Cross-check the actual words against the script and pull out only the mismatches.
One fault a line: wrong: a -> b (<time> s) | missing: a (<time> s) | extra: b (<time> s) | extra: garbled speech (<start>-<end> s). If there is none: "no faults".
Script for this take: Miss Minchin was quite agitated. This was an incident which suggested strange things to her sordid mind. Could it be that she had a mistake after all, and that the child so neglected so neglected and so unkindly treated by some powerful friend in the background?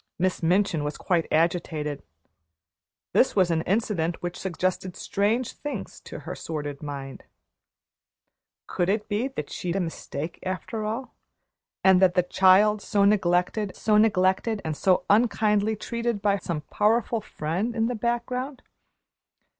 no faults